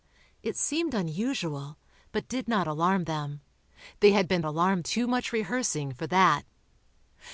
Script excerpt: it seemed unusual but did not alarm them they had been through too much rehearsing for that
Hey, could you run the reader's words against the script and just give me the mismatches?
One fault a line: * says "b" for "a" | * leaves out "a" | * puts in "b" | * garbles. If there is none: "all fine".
* says "alarm" for "through"